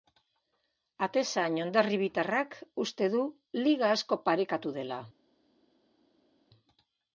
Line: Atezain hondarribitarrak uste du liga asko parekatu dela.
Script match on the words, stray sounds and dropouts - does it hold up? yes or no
yes